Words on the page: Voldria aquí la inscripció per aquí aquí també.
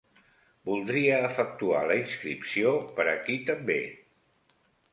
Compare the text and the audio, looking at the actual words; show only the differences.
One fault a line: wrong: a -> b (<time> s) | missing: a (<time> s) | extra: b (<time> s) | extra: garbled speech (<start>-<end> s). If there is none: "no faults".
wrong: aquí -> efectuar (1.2 s)
missing: aquí (3.4 s)